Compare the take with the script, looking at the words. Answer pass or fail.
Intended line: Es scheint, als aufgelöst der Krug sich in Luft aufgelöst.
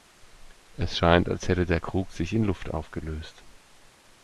fail